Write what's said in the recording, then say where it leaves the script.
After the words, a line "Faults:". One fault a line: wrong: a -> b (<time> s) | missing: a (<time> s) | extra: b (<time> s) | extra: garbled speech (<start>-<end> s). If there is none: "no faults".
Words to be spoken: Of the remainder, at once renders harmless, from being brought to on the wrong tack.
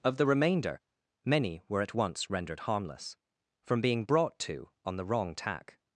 Of the remainder, many were at once rendered harmless, from being brought to on the wrong tack.
Faults:
extra: many were (1.2 s)
wrong: renders -> rendered (2.3 s)